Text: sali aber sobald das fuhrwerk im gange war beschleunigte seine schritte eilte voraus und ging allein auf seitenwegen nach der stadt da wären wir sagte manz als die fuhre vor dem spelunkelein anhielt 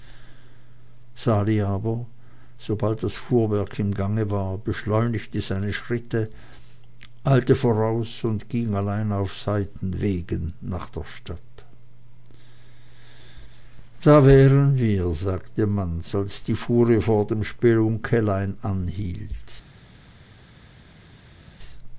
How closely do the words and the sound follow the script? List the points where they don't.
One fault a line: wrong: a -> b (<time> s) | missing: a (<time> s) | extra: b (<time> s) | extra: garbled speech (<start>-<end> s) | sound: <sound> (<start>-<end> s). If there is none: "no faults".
no faults